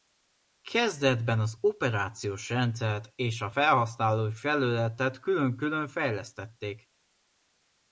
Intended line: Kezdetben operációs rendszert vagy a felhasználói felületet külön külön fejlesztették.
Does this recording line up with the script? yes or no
no